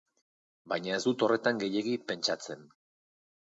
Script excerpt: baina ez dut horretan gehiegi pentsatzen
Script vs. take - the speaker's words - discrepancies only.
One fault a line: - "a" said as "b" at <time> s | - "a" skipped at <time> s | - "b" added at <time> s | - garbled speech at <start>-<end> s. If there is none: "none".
none